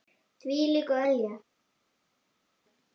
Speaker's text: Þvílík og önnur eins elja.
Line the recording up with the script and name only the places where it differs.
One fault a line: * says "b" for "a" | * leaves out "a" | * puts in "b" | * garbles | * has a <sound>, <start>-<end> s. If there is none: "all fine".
* leaves out "önnur eins"